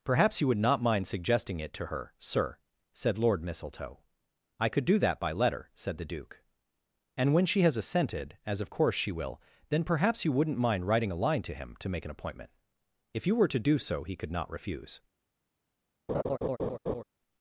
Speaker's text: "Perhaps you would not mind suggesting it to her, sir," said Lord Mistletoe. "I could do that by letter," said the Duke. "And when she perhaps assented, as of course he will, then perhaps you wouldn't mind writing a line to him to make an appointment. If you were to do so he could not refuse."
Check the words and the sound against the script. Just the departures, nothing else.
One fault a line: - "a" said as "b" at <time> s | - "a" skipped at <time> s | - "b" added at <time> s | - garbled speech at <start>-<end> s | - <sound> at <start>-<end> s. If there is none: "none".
- "perhaps" said as "has" at 7.6 s
- "he" said as "she" at 9.0 s
- laugh at 16.1-17.0 s